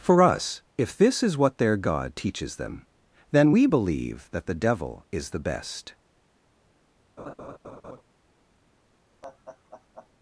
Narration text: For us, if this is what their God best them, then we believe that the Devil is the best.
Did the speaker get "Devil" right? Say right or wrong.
right